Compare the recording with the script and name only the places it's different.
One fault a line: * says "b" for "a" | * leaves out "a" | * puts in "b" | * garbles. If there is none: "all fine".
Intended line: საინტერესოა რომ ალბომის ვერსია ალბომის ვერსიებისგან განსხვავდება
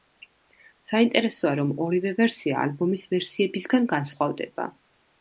* says "ორივე" for "ალბომის"